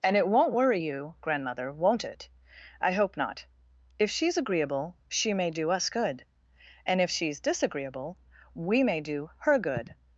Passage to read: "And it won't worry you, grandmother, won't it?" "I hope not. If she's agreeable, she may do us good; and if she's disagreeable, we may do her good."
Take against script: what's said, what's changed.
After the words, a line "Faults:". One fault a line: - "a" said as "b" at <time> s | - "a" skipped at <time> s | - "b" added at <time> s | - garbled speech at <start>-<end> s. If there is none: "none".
"And it won't worry you, grandmother, won't it?" "I hope not. If she's agreeable, she may do us good; and if she's disagreeable, we may do her good."
Faults:
none